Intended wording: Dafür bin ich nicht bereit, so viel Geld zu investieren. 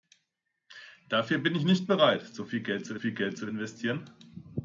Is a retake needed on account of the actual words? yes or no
yes